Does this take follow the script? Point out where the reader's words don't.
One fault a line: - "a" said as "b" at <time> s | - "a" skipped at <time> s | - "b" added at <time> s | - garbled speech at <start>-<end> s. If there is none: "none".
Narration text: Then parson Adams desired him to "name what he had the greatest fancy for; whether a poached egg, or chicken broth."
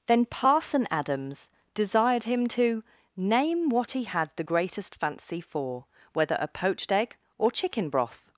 none